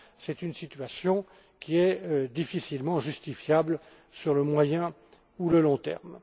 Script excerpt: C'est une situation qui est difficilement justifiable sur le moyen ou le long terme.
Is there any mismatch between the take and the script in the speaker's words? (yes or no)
no